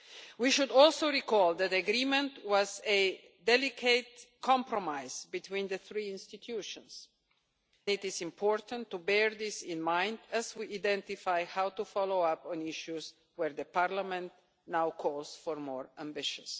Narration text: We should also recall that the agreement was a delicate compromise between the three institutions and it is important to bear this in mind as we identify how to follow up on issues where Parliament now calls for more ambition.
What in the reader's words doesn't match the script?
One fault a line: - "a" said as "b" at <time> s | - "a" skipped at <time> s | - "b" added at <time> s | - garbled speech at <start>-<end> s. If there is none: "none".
- "and" skipped at 7.1 s